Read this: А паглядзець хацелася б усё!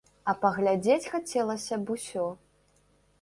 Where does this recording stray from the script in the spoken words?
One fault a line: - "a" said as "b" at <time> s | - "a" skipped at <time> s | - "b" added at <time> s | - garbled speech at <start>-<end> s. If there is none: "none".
none